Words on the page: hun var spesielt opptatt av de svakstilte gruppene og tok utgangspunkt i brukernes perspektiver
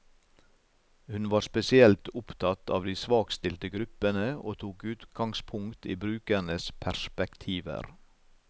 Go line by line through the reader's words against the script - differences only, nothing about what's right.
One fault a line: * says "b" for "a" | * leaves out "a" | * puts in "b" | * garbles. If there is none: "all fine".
all fine